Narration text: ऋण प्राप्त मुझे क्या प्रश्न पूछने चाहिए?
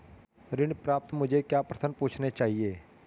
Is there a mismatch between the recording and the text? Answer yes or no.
no